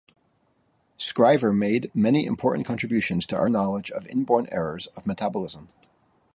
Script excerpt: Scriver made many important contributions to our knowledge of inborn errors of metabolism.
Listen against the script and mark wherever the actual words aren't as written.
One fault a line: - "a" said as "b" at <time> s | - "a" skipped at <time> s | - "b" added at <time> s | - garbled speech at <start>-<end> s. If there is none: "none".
none